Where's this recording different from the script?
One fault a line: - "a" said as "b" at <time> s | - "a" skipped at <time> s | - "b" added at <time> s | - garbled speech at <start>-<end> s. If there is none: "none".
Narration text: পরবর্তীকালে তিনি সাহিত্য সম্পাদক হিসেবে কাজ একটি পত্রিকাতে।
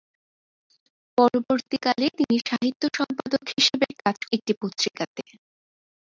none